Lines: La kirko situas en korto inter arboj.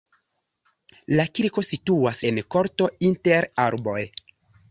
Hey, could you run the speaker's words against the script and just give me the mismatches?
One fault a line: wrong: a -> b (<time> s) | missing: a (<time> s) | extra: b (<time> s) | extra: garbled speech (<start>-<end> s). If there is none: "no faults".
no faults